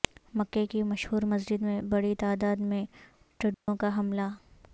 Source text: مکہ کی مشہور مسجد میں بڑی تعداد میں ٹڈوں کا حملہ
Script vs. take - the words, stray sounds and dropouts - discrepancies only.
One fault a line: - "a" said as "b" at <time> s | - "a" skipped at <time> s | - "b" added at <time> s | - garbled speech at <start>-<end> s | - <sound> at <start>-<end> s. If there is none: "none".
- dropout at 3.5-3.7 s